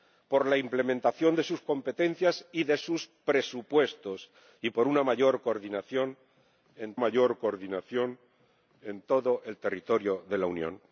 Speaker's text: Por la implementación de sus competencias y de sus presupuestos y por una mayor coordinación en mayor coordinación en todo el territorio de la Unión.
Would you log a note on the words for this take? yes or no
no